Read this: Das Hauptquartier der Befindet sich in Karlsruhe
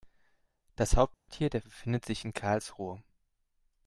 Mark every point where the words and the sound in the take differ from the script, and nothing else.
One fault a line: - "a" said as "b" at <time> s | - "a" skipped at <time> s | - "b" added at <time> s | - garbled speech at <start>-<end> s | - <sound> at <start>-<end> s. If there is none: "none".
- dropout at 1.1-1.3 s